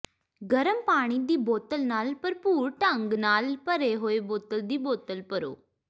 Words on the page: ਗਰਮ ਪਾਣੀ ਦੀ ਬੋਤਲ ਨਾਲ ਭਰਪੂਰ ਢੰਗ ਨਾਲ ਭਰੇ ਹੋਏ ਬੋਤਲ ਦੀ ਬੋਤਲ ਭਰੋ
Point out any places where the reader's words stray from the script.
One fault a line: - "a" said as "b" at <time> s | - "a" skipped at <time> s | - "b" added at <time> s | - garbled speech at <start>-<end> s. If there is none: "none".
none